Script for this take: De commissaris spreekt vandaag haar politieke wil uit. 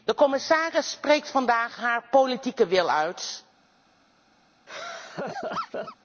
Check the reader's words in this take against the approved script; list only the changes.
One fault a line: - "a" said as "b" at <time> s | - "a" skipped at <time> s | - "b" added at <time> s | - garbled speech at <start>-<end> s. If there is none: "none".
none